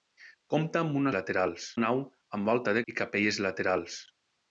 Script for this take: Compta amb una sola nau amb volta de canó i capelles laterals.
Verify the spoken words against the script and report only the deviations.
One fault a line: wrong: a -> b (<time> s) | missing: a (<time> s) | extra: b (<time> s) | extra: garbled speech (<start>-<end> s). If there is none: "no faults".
wrong: sola -> laterals (1.2 s)
missing: canó (2.8 s)